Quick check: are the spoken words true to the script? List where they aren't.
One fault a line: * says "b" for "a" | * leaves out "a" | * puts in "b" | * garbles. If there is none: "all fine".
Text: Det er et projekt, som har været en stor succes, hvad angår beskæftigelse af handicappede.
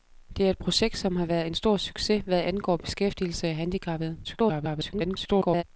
* garbles